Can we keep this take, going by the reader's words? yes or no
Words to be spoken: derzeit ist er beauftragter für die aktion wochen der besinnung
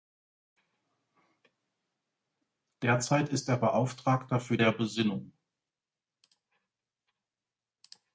no